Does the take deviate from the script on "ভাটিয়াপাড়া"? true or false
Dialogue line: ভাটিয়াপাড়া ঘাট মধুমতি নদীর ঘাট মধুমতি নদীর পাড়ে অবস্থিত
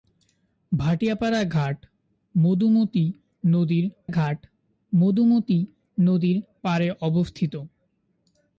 false